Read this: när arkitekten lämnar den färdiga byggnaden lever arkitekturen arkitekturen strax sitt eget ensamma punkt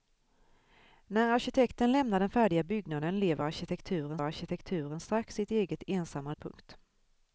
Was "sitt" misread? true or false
false